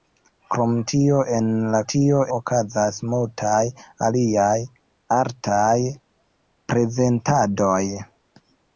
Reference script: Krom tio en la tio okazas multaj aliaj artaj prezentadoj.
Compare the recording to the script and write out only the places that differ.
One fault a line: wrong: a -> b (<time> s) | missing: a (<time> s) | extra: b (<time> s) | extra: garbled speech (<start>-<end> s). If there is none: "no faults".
no faults